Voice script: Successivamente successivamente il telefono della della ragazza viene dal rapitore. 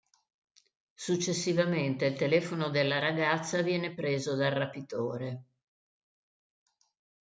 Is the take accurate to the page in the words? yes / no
no